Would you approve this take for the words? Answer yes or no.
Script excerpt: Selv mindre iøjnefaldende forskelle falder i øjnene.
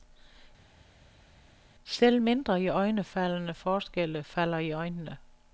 yes